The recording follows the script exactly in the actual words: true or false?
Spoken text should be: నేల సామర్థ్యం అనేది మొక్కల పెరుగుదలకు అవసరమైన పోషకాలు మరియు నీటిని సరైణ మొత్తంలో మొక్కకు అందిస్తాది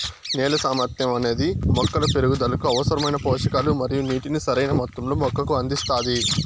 true